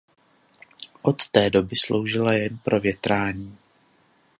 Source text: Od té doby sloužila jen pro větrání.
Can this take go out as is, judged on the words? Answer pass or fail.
pass